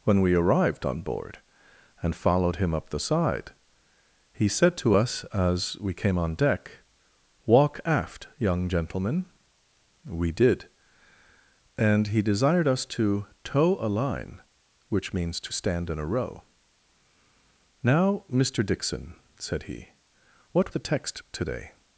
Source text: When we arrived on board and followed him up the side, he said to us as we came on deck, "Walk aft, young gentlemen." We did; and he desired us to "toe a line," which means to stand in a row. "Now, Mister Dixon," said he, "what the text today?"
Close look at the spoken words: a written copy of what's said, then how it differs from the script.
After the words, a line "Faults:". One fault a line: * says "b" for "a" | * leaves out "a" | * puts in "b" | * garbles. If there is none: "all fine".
When we arrived on board and followed him up the side, he said to us as we came on deck, "Walk aft, young gentlemen." We did; and he desired us to "toe a line," which means to stand in a row. "Now, Mister Dixon," said he, "what the text today?"
Faults:
all fine